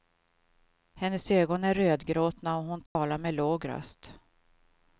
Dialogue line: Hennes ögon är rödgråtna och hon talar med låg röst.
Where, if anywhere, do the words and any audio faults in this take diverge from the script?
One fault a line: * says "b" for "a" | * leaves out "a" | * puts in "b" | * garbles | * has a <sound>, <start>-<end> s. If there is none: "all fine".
* has a dropout, 2.9-3.0 s